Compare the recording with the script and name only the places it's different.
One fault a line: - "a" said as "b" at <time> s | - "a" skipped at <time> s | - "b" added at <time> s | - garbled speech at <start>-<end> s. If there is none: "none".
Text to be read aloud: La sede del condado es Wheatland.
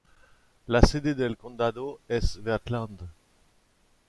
none